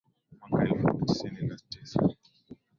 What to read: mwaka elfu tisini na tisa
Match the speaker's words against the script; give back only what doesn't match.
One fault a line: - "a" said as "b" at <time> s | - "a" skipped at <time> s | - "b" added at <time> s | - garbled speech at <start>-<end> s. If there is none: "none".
none